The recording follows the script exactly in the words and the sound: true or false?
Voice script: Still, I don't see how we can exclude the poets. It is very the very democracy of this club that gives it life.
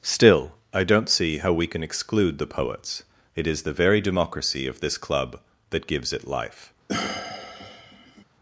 false